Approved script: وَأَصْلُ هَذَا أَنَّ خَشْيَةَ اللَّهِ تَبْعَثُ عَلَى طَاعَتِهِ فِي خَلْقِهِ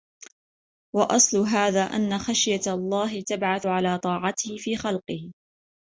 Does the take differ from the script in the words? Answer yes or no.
no